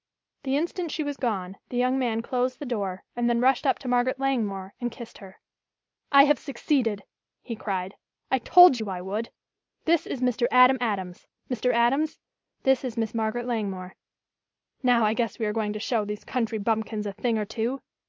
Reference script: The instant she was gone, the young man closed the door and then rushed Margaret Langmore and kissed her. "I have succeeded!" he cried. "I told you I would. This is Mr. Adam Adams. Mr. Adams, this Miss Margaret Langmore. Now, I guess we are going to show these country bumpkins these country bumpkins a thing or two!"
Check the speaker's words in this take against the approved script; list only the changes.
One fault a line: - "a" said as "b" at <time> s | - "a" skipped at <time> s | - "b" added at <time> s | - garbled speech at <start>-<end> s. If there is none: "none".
- "up to" added at 3.7 s
- "is" added at 12.9 s
- "these country bumpkins" skipped at 17.1 s